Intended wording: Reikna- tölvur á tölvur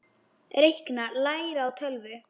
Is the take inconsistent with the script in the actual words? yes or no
yes